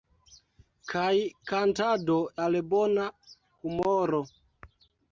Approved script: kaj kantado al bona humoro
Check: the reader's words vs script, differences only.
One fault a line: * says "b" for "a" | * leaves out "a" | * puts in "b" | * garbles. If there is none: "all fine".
all fine